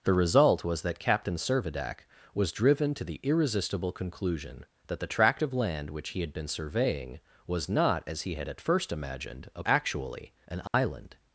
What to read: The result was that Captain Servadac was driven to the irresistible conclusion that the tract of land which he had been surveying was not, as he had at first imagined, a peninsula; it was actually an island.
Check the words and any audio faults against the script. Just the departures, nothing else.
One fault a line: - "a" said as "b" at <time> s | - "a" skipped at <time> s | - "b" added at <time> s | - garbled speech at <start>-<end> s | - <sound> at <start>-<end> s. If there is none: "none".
- "peninsula it was" skipped at 9.6 s
- dropout at 10.7-10.7 s